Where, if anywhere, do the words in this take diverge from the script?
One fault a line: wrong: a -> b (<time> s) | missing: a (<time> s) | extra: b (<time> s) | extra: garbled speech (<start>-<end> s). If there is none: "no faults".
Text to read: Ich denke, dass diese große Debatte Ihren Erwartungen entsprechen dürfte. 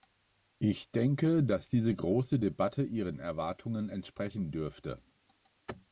no faults